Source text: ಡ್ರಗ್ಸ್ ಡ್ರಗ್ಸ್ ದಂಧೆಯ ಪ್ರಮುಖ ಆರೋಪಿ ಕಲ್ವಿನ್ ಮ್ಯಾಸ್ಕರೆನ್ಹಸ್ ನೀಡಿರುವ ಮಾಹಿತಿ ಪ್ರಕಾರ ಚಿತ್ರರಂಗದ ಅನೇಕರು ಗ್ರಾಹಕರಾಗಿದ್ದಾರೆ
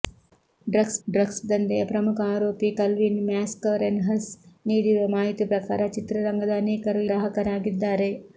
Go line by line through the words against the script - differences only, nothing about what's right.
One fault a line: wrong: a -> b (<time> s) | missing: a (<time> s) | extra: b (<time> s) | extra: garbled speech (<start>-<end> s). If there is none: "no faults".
no faults